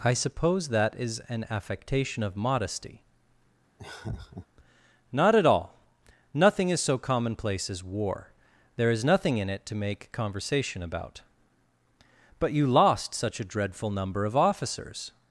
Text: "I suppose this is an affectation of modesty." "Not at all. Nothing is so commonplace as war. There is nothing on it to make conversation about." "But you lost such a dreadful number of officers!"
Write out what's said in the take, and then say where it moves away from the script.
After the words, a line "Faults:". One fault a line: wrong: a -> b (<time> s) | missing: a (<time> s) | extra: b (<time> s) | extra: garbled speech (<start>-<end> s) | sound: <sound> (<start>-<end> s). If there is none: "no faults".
"I suppose that is an affectation of modesty." "Not at all. Nothing is so commonplace as war. There is nothing in it to make conversation about." "But you lost such a dreadful number of officers!"
Faults:
wrong: this -> that (0.7 s)
sound: laugh (3.8-4.5 s)
wrong: on -> in (9.4 s)